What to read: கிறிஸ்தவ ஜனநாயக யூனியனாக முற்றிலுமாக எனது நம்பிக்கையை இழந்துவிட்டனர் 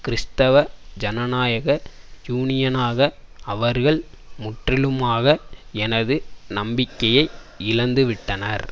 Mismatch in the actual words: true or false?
true